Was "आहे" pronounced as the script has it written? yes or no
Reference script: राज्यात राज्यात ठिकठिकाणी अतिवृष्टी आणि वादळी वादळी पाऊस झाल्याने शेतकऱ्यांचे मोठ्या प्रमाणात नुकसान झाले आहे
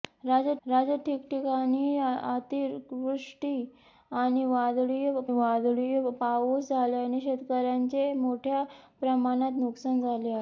yes